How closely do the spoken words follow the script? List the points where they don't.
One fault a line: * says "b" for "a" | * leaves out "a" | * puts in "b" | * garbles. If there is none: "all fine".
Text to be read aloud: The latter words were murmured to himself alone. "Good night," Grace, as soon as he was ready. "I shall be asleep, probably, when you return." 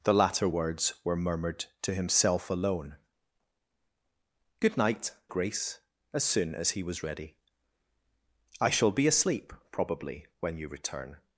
all fine